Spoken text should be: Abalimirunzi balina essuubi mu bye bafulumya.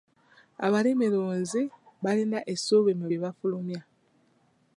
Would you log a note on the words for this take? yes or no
no